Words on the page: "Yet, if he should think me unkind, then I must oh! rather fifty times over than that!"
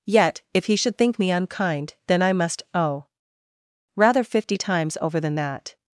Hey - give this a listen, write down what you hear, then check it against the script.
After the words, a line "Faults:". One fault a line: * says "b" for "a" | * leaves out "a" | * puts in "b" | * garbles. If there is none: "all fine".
"Yet, if he should think me unkind, then I must oh! rather fifty times over than that!"
Faults:
all fine